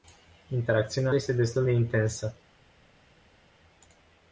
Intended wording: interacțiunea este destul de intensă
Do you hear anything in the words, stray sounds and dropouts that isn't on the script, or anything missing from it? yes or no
no